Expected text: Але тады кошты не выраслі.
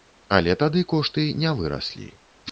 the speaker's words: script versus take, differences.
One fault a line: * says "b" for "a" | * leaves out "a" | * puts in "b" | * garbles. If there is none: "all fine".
all fine